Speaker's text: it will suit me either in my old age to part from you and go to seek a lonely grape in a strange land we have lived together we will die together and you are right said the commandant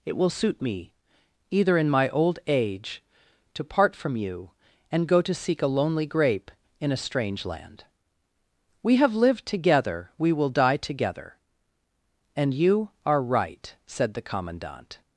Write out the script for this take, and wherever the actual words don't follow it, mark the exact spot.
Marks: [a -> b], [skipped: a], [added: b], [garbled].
it will suit me either in my old age to part from you and go to seek a lonely grape in a strange land we have lived together we will die together and you are right said the commandant